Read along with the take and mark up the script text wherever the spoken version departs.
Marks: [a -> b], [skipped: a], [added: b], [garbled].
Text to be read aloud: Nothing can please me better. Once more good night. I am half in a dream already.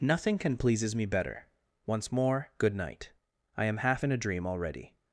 Nothing can [please -> pleases] me better. Once more good night. I am half in a dream already.